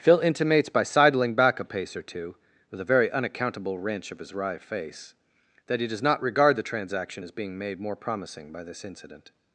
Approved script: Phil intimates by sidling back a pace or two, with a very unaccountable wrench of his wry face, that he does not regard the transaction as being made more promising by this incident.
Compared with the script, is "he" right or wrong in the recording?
right